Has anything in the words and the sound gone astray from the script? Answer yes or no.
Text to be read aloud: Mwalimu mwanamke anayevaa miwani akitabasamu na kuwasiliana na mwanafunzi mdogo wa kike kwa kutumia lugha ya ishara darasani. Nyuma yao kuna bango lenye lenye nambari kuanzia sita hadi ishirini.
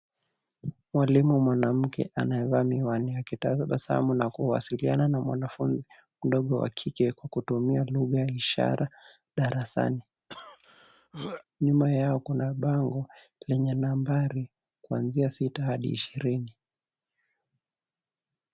yes